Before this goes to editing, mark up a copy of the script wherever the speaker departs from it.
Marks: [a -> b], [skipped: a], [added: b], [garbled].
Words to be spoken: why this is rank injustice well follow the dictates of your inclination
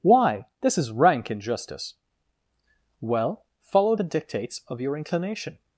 why this is rank injustice well follow the dictates of your inclination